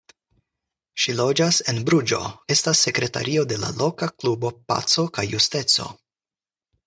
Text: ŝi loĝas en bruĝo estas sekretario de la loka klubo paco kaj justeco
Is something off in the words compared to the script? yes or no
no